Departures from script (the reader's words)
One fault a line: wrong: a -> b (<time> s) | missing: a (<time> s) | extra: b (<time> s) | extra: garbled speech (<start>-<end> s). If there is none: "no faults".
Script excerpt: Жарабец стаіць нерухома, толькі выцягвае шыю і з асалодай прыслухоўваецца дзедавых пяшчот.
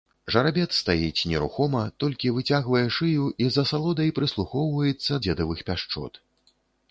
no faults